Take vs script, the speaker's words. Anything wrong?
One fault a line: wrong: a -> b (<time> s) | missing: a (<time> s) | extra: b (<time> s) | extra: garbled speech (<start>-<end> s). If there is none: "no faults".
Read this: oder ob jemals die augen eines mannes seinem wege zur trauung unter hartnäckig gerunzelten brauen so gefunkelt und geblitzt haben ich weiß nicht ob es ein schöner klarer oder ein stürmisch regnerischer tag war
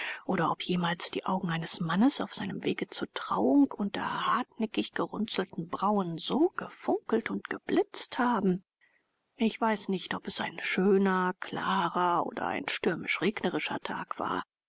extra: auf (2.2 s)